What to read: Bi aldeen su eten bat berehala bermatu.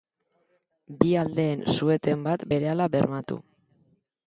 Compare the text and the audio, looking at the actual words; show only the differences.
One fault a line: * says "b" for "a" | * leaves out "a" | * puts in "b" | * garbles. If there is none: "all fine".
all fine